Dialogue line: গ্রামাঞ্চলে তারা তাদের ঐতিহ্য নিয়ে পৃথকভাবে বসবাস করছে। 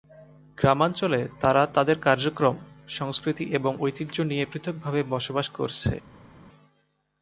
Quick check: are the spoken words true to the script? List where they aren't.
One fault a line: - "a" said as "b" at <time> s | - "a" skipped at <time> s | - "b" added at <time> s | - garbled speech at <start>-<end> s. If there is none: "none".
- "কার্যক্রম সংস্কৃতি এবং" added at 2.0 s